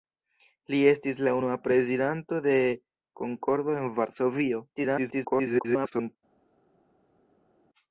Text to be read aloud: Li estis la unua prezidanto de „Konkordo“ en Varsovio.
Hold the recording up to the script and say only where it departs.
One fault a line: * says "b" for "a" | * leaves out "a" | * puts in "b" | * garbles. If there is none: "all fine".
* garbles